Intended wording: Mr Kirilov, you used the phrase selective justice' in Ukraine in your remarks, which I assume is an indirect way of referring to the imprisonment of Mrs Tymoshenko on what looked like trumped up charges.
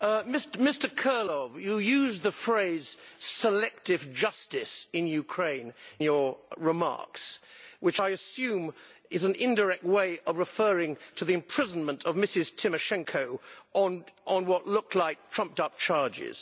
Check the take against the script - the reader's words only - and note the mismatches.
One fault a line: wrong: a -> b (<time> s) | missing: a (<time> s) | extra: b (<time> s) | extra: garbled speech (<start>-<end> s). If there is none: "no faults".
missing: in (5.8 s)